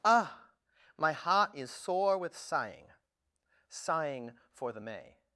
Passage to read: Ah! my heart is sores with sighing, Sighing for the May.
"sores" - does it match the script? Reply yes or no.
no